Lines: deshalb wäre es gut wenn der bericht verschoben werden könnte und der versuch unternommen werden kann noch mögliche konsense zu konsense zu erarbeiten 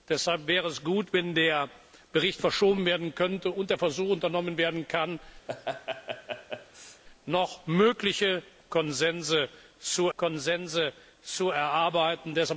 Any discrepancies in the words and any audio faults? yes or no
yes